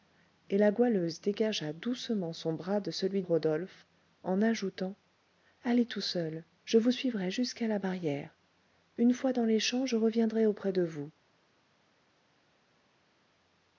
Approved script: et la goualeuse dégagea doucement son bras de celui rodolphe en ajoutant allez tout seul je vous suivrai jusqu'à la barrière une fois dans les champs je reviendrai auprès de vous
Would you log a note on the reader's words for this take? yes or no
no